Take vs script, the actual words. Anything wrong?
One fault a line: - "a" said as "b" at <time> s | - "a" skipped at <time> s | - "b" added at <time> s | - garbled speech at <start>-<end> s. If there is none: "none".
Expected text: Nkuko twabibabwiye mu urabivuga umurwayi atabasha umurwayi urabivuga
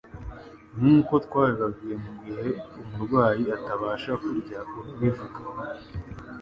- "urabivuga" said as "gihe" at 2.2 s
- "umurwayi" said as "kurya" at 4.2 s